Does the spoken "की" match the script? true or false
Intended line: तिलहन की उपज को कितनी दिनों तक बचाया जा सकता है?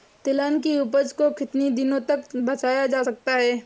true